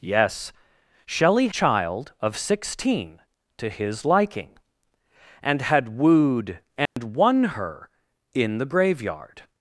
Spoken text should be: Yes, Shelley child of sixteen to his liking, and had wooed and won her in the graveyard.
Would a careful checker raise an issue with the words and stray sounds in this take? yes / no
yes